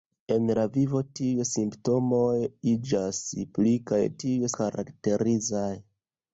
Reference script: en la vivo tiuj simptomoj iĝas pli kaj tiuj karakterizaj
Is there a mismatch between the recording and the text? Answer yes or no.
no